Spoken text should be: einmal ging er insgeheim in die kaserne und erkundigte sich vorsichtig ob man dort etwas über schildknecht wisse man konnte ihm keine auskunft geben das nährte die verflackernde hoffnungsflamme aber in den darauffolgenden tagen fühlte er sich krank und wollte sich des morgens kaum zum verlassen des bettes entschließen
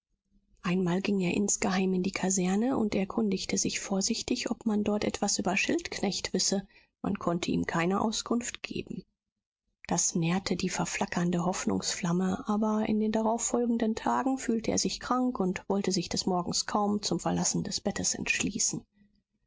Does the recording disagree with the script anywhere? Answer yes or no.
no